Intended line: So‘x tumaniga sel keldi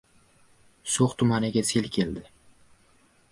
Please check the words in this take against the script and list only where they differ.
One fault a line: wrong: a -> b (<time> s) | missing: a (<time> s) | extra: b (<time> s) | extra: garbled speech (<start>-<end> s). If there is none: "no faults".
no faults